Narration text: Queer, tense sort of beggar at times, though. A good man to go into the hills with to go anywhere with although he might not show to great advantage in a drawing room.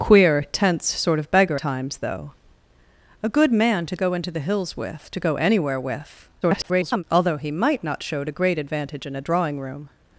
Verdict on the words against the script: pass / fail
fail